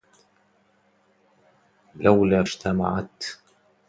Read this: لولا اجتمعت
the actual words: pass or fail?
pass